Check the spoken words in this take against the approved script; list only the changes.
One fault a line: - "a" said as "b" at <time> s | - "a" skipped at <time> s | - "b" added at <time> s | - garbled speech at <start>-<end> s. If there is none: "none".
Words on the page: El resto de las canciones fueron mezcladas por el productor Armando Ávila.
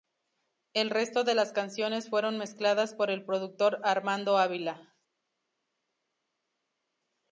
none